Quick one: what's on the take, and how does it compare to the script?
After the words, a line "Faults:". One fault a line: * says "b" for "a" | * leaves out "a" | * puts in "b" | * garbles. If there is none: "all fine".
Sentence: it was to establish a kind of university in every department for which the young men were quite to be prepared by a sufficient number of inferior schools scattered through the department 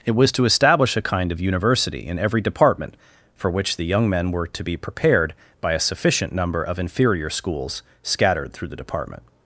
it was to establish a kind of university in every department for which the young men were to be prepared by a sufficient number of inferior schools scattered through the department
Faults:
* leaves out "quite"